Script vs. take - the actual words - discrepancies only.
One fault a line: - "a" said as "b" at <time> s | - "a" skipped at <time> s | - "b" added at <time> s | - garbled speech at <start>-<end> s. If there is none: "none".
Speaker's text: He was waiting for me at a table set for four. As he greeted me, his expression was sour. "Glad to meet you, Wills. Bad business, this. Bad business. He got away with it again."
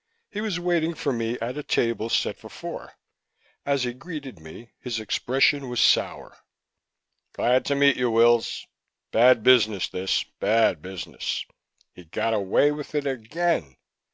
none